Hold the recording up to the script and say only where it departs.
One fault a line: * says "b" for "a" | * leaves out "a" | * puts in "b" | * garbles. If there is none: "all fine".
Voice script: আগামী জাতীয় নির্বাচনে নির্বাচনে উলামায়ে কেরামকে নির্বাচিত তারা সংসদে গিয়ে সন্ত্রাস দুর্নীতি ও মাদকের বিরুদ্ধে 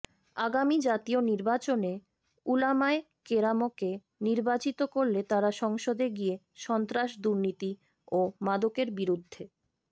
* leaves out "নির্বাচনে"
* puts in "করলে"